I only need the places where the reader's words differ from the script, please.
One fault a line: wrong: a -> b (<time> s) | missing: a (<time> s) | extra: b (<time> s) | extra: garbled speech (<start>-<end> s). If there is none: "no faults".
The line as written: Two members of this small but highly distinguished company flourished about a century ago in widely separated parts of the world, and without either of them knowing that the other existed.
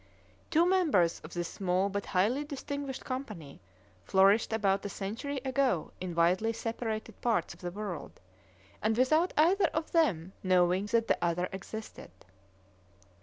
no faults